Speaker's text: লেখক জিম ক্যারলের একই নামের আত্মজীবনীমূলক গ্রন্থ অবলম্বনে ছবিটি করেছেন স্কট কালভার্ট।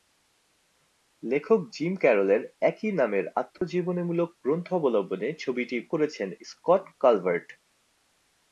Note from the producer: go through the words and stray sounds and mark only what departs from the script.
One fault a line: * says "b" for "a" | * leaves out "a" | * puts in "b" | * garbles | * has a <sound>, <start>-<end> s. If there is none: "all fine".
* has a dropout, 3.6-3.6 s